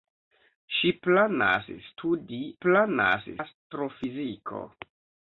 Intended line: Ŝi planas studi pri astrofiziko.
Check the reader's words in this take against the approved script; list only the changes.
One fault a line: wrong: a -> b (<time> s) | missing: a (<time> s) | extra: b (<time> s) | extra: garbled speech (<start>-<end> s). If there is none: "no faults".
wrong: pri -> planas (2.7 s)